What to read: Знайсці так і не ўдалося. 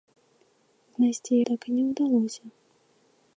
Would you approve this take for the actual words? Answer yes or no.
yes